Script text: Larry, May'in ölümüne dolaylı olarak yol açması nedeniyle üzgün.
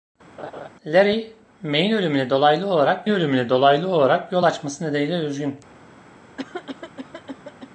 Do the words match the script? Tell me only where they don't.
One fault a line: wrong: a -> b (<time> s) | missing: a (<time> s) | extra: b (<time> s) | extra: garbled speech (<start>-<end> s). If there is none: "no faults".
extra: ölümüne dolaylı olarak (3.1 s)